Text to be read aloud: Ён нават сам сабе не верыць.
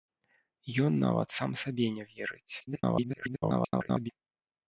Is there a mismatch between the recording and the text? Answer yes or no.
yes